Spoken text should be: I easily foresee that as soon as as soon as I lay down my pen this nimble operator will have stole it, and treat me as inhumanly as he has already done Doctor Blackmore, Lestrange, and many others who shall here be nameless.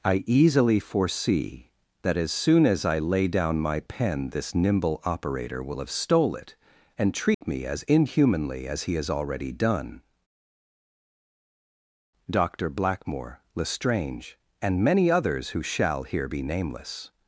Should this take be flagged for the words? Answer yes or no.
yes